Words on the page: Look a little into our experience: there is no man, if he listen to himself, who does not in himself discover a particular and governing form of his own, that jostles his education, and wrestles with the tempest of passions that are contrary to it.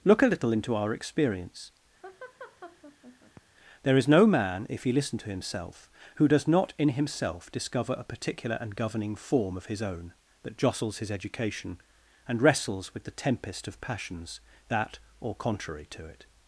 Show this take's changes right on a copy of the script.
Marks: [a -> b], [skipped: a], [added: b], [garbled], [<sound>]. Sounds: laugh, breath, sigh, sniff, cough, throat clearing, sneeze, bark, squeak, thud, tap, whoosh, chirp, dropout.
Look a little into our experience: [laugh] there is no man, if he listen to himself, who does not in himself discover a particular and governing form of his own, that jostles his education, and wrestles with the tempest of passions that [are -> or] contrary to it.